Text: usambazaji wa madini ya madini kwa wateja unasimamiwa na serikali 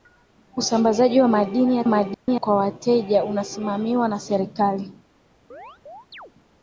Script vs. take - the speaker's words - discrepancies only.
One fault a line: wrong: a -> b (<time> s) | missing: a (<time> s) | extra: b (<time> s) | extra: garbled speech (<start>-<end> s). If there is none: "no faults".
no faults